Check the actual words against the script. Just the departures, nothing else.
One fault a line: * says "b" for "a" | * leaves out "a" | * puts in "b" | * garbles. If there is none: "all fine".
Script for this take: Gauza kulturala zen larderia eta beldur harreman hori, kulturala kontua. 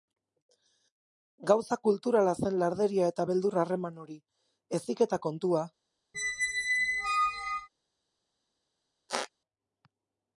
* says "heziketa" for "kulturala"